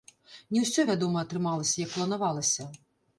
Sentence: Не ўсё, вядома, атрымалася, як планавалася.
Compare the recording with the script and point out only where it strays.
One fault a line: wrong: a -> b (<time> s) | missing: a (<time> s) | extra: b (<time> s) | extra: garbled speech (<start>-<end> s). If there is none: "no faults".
no faults